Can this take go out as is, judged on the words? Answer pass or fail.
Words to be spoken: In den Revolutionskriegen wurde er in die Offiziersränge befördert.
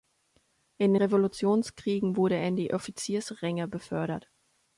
fail